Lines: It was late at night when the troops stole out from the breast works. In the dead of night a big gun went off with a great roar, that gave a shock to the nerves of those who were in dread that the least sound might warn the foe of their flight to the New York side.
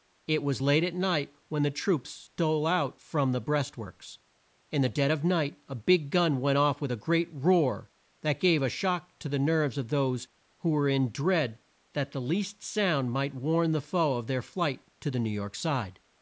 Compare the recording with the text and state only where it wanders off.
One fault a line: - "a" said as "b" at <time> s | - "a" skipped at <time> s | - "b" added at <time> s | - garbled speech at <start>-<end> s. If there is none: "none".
none